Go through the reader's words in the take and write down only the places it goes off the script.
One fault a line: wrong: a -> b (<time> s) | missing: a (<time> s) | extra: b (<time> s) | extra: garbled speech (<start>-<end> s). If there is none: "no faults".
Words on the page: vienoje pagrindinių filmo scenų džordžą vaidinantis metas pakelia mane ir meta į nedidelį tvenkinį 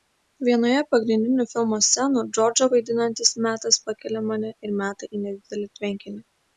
no faults